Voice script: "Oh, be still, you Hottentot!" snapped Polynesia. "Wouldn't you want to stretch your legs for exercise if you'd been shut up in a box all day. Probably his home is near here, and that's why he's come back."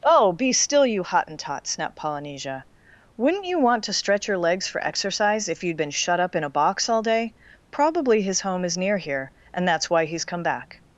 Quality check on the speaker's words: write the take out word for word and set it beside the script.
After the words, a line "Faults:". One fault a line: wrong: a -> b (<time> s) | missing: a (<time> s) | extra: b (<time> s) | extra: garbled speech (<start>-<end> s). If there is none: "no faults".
"Oh, be still, you Hottentot!" snapped Polynesia. "Wouldn't you want to stretch your legs for exercise if you'd been shut up in a box all day. Probably his home is near here, and that's why he's come back."
Faults:
no faults